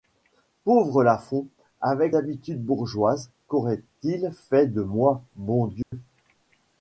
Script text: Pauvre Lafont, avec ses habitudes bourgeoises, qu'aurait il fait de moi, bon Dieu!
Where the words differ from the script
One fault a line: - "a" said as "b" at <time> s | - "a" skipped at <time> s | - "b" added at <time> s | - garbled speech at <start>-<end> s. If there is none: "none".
- "ses" skipped at 2.1 s